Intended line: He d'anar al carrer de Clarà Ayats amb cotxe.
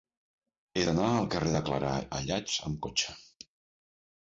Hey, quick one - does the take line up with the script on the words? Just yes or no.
yes